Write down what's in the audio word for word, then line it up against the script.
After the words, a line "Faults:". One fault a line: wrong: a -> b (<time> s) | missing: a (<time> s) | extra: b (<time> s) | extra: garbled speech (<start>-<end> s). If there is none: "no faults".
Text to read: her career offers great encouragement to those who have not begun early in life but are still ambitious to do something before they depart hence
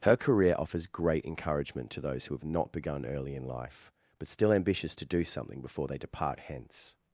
her career offers great encouragement to those who have not begun early in life but still ambitious to do something before they depart hence
Faults:
missing: are (4.3 s)